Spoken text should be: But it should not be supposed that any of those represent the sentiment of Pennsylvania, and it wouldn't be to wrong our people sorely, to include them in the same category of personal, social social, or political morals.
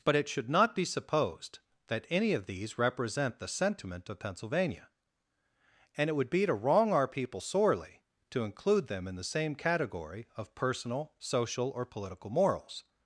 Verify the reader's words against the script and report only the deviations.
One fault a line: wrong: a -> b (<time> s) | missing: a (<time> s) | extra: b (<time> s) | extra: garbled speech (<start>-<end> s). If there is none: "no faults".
wrong: those -> these (2.5 s)
wrong: wouldn't -> would (6.1 s)
missing: social (11.7 s)